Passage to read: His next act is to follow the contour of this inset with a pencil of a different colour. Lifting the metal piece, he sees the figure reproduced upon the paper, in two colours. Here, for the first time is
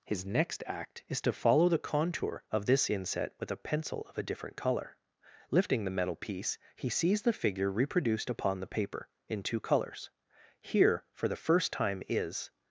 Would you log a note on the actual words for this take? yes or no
no